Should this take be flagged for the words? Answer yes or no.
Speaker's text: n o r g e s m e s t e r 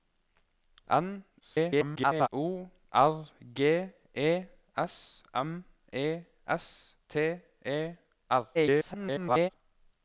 yes